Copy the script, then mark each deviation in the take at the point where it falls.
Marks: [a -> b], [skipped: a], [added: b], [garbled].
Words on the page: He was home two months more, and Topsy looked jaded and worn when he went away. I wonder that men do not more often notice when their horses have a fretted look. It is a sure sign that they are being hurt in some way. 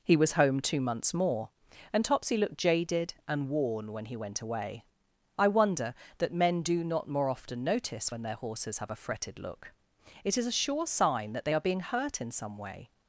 He was home two months more, and Topsy looked jaded and worn when he went away. I wonder that men do not more often notice when their horses have a fretted look. It is a sure sign that they are being hurt in some way.